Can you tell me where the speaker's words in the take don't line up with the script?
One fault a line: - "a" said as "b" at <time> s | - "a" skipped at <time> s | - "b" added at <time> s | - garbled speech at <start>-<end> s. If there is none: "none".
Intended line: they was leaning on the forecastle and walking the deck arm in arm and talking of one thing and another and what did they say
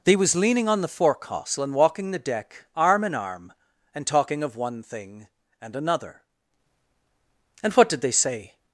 none